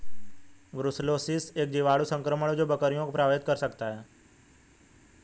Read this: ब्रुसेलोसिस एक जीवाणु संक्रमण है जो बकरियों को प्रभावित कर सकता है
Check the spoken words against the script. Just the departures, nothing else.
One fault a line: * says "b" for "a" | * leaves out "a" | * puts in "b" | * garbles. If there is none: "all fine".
all fine